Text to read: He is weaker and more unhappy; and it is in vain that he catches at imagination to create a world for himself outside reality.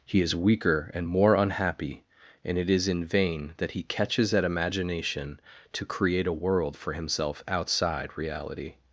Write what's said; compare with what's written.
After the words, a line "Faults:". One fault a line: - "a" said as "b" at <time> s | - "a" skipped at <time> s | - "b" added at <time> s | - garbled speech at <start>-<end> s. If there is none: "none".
He is weaker and more unhappy; and it is in vain that he catches at imagination to create a world for himself outside reality.
Faults:
none